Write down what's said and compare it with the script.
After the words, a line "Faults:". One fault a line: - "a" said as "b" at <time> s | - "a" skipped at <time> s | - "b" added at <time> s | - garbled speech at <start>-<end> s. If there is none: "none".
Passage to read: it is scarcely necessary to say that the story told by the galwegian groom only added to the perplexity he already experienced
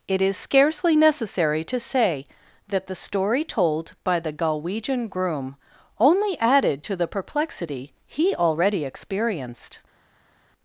it is scarcely necessary to say that the story told by the galwegian groom only added to the perplexity he already experienced
Faults:
none